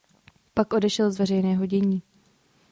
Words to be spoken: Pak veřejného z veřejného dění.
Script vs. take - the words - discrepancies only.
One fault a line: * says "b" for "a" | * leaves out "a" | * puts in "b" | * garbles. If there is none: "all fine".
* says "odešel" for "veřejného"